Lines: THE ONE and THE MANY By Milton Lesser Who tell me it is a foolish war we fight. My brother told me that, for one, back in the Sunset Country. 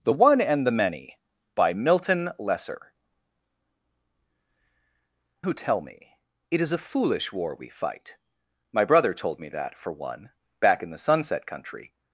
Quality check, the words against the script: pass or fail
pass